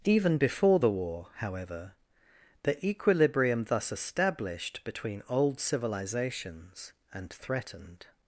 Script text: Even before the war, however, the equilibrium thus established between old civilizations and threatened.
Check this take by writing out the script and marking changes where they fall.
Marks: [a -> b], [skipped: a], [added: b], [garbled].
Even before the war, however, the equilibrium thus established between old civilizations and threatened.